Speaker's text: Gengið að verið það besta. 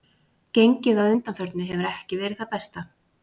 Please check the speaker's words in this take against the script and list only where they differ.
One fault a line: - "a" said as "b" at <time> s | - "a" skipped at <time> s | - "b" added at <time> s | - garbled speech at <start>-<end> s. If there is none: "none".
- "undanförnu hefur ekki" added at 1.1 s